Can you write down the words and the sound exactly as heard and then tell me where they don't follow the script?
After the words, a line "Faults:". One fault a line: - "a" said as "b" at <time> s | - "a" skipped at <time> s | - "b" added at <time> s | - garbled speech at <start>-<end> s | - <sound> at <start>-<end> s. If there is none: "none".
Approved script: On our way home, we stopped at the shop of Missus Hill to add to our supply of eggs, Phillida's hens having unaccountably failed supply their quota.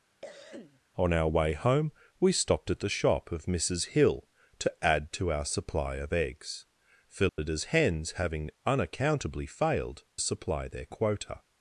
On our way home, we stopped at the shop of Missus Hill to add to our supply of eggs, Phillida's hens having unaccountably failed supply their quota.
Faults:
- cough at 0.2-0.8 s
- dropout at 7.3-7.4 s